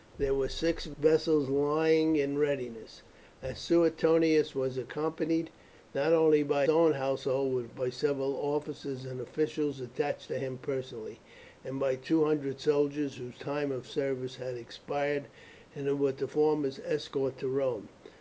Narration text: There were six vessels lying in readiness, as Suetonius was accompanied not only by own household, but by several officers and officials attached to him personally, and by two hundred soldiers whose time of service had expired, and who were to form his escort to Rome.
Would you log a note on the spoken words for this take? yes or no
no